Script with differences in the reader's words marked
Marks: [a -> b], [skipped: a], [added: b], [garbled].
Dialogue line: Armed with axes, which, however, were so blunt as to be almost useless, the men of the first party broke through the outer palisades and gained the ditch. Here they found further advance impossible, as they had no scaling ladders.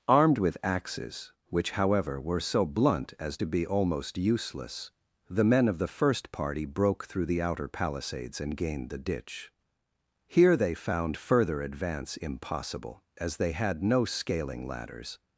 Armed with axes, which, however, were so blunt as to be almost useless, the men of the first party broke through the outer palisades and gained the ditch. Here they found further advance impossible, as they had no scaling ladders.